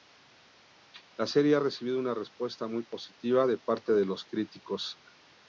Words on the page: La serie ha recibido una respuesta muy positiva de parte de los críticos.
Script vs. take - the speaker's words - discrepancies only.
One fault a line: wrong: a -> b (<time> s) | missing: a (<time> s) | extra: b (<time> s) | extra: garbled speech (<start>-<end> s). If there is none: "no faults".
no faults